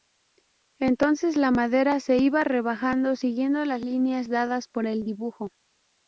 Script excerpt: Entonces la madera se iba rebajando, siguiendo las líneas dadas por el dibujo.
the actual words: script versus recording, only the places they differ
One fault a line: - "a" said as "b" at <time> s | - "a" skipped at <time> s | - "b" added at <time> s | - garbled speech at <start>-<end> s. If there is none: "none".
none